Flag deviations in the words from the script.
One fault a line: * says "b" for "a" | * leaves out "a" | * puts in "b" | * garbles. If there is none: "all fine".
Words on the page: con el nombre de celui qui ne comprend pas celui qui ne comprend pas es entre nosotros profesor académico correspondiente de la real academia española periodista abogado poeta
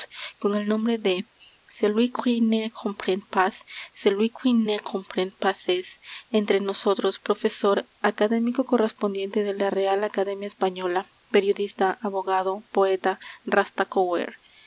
all fine